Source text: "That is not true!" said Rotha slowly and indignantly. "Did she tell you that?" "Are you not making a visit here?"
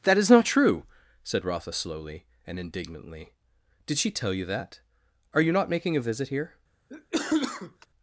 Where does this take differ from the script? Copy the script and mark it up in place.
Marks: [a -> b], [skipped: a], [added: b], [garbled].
"That is not true!" said Rotha slowly and indignantly. "Did she tell you that?" "Are you not making a visit here?"